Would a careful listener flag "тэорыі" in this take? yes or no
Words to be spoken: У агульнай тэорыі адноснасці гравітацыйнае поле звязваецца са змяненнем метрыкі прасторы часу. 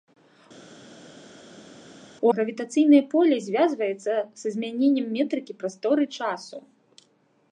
yes